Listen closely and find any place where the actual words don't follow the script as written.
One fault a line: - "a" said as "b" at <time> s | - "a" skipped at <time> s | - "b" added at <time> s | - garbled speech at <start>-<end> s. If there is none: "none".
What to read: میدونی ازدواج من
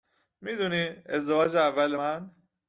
- "اول" added at 1.6 s